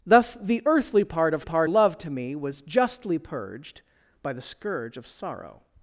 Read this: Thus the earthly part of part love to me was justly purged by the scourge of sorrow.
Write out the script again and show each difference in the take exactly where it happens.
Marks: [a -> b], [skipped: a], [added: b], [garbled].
Thus the earthly part of part love to me was justly purged by the scourge of sorrow.